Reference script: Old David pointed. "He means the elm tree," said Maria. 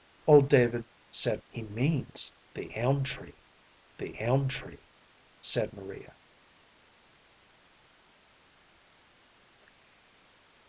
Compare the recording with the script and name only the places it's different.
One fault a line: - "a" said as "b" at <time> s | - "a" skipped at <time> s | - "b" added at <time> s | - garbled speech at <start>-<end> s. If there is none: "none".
- "pointed" said as "said" at 1.1 s
- "the elm tree" added at 4.0 s